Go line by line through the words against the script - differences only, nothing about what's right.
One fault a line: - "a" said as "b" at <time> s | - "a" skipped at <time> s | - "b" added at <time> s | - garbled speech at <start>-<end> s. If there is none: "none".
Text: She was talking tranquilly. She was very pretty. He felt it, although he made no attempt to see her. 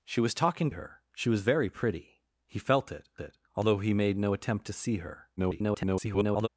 - "tranquilly" said as "her" at 0.7 s
- "it" added at 3.2 s
- garbled speech at 5.4-6.5 s